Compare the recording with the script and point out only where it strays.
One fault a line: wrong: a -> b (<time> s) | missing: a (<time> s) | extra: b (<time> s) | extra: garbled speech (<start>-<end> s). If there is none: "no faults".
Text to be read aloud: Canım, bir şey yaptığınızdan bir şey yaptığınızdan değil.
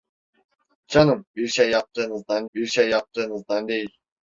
no faults